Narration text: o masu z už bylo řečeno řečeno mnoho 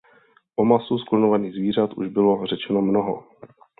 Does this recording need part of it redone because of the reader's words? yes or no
yes